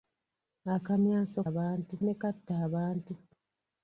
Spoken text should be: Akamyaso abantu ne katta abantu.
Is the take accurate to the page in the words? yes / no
yes